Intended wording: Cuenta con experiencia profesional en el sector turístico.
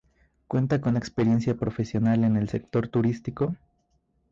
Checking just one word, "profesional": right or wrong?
right